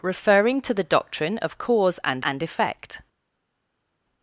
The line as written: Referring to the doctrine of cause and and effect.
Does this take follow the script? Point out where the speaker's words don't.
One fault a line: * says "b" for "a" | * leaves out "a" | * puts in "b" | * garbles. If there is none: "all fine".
all fine